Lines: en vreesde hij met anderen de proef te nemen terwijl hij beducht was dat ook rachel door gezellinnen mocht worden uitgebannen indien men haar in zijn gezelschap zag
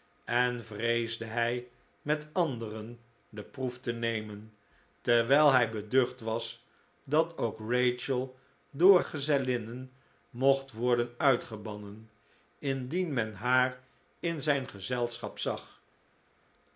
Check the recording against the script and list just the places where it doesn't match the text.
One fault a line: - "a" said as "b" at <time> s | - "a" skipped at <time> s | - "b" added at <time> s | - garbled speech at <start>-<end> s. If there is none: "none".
none